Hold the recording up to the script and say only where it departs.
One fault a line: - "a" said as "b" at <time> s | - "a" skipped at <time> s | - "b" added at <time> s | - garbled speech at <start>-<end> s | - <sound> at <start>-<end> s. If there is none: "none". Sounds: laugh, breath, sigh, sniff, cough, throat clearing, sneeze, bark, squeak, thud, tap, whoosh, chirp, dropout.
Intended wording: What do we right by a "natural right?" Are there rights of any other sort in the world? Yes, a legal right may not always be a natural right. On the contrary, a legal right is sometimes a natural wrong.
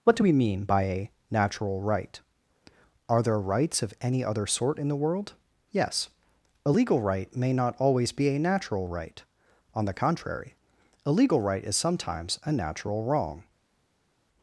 - "right" said as "mean" at 0.3 s